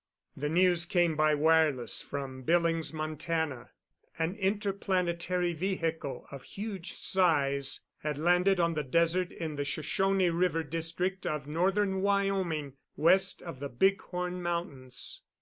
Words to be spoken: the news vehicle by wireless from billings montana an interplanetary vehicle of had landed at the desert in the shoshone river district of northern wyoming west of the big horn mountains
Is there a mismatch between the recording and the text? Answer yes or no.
yes